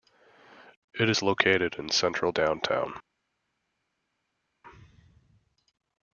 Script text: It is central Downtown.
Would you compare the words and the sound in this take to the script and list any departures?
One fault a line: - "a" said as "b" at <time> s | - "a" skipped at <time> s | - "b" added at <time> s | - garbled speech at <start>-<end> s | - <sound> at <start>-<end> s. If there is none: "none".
- "located in" added at 1.2 s